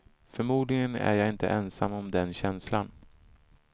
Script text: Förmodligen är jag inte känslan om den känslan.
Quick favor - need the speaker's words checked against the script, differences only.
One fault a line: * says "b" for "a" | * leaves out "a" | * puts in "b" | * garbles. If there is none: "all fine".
* says "ensam" for "känslan"